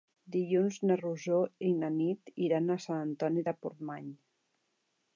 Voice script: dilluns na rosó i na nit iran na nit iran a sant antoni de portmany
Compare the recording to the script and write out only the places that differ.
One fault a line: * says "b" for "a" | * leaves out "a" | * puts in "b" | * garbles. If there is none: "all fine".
* leaves out "na nit iran"